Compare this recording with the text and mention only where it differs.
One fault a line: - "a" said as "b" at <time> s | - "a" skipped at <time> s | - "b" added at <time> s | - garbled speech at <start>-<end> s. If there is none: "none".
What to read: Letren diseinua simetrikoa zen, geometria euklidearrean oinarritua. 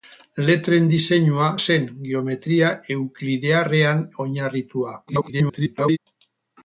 - "simetrikoa" skipped at 1.5 s
- garbled speech at 5.1-6.0 s